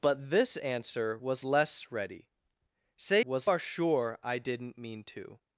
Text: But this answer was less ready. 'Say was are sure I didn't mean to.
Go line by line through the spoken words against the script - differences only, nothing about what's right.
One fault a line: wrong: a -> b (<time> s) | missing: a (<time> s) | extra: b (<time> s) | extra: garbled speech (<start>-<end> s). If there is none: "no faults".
no faults